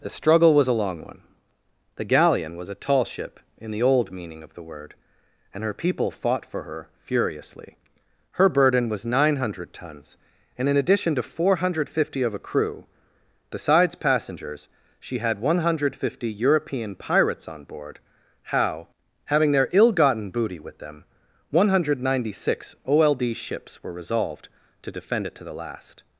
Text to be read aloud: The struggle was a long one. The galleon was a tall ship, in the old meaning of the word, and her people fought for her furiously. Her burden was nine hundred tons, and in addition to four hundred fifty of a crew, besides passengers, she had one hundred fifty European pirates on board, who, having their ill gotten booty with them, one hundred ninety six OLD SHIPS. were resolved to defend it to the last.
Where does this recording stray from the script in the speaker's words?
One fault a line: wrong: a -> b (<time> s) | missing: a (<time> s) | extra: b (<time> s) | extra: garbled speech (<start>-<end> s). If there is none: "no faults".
wrong: who -> how (18.4 s)